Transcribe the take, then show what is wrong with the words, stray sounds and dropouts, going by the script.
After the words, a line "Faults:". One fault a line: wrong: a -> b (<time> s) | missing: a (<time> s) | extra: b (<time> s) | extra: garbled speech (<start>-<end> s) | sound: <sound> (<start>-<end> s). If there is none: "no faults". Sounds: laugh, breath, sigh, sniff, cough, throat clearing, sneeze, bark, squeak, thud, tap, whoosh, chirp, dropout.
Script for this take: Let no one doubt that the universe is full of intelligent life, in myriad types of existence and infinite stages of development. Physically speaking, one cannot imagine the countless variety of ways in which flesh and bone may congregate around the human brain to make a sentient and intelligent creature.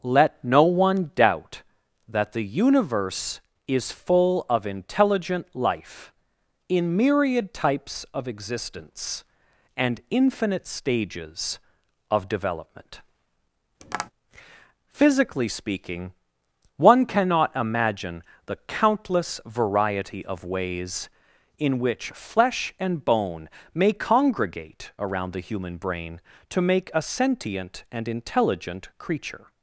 Let no one doubt that the universe is full of intelligent life, in myriad types of existence and infinite stages of development. Physically speaking, one cannot imagine the countless variety of ways in which flesh and bone may congregate around the human brain to make a sentient and intelligent creature.
Faults:
sound: tap (13.8-14.1 s)